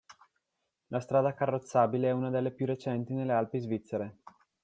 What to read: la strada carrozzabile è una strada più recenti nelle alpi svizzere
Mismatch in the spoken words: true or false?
true